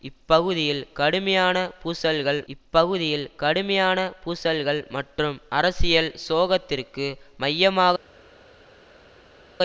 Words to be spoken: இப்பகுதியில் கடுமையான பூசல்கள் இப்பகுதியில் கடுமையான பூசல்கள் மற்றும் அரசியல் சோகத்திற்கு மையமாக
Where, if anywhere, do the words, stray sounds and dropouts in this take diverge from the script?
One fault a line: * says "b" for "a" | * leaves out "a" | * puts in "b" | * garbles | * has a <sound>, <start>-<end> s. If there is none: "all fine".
all fine